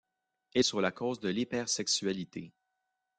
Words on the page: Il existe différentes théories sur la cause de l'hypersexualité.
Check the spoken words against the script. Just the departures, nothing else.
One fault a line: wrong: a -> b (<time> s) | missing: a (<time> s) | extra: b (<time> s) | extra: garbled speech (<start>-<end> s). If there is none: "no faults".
missing: existe différentes théories (0.7 s)